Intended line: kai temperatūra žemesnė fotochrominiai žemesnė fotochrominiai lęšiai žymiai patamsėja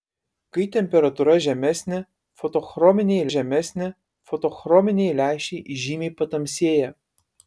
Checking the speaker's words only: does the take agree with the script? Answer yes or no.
yes